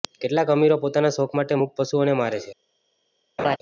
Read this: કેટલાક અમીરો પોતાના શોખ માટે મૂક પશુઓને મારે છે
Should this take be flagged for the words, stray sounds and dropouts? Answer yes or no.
yes